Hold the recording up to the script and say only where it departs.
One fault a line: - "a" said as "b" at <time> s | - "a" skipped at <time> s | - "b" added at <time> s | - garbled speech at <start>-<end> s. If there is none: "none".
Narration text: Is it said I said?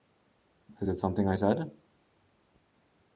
- "said" said as "something" at 1.0 s